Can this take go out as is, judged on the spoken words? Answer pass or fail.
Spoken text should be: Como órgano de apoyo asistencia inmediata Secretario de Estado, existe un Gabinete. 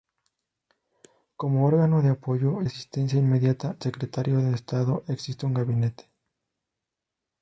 pass